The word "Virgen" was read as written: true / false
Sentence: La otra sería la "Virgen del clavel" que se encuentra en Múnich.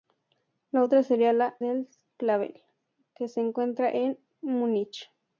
false